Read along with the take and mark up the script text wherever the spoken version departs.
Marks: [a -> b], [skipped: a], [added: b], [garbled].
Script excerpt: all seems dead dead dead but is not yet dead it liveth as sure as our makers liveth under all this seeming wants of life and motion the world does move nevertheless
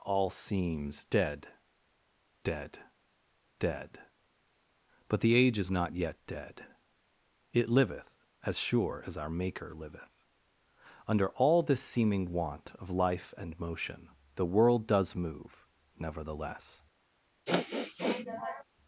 all seems dead dead dead but [added: the age] is not yet dead it liveth as sure as our [makers -> maker] liveth under all this seeming [wants -> want] of life and motion the world does move nevertheless